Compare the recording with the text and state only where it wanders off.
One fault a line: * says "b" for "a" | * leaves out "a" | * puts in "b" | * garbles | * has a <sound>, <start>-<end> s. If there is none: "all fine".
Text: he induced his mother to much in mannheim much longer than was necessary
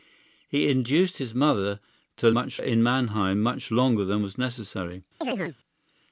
* has a chirp, 5.2-5.6 s